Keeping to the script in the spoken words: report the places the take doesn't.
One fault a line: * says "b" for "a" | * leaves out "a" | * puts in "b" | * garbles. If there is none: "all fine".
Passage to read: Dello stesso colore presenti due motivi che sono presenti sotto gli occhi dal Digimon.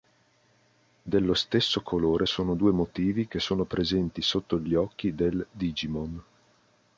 * says "sono" for "presenti"
* says "del" for "dal"